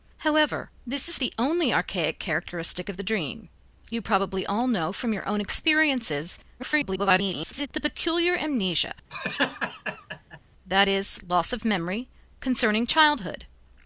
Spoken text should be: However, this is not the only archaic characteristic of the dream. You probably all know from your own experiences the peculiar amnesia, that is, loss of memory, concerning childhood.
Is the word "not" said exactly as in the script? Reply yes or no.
no